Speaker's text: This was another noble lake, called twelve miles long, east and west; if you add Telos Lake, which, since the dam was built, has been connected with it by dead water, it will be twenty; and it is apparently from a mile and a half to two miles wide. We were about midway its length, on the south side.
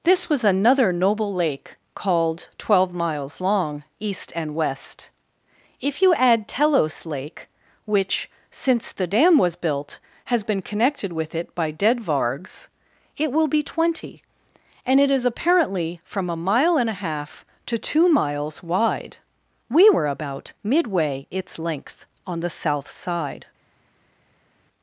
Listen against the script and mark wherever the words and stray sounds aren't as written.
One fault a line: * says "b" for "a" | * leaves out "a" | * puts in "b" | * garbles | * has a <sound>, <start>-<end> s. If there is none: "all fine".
* says "vargs" for "water"